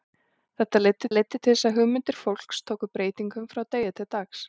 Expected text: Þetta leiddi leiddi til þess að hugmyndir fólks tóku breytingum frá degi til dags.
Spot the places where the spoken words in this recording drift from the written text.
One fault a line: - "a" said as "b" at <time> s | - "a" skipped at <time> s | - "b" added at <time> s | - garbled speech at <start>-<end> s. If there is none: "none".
none